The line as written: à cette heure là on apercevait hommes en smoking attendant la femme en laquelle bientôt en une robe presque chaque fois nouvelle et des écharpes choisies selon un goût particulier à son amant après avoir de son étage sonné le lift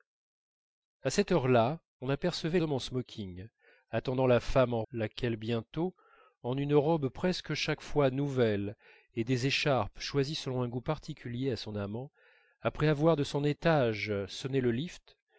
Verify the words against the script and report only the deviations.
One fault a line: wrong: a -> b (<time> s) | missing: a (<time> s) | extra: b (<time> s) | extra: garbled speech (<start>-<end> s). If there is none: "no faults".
no faults